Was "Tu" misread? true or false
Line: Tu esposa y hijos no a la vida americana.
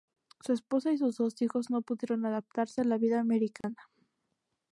true